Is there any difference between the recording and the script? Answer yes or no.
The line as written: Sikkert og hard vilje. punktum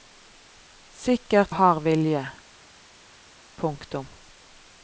no